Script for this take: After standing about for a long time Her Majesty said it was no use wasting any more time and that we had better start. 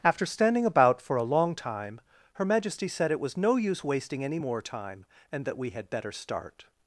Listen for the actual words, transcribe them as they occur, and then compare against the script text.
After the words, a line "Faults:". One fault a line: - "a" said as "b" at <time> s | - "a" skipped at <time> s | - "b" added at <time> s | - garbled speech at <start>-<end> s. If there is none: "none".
After standing about for a long time Her Majesty said it was no use wasting any more time and that we had better start.
Faults:
none